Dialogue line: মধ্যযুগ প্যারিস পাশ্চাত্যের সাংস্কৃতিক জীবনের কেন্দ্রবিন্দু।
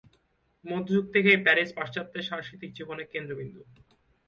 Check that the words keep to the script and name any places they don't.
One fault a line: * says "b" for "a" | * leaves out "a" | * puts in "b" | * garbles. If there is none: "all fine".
* puts in "থেকেই"